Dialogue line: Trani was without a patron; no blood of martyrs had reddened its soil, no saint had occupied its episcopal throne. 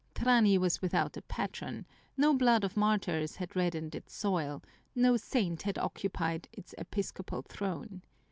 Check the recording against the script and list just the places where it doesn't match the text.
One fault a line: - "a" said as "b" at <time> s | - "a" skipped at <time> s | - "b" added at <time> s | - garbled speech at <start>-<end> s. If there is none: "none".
none